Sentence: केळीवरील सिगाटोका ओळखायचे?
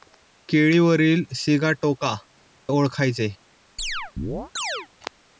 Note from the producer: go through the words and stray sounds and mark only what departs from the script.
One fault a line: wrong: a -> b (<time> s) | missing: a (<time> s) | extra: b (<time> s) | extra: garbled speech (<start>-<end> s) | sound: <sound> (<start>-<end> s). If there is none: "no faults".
sound: chirp (3.8-4.9 s)